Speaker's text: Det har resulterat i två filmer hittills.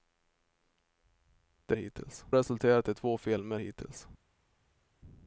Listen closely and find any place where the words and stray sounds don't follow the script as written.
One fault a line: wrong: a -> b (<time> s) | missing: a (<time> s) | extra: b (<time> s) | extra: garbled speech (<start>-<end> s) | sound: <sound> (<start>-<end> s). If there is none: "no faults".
wrong: har -> hittills (1.7 s)